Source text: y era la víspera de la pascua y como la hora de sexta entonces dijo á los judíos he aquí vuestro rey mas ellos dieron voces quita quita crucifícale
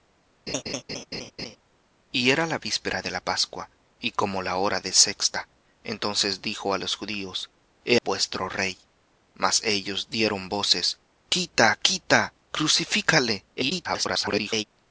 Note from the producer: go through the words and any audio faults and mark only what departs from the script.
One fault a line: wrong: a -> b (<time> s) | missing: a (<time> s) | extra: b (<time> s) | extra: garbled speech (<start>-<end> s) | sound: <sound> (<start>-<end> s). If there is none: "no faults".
sound: laugh (0.5-1.6 s)
missing: aquí (8.0 s)
extra: garbled speech (13.5-14.7 s)